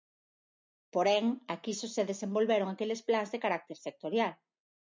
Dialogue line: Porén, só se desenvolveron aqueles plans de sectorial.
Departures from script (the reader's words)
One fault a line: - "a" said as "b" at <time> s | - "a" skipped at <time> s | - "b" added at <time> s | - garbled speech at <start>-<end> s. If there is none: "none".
- "aquí" added at 1.5 s
- "carácter" added at 3.4 s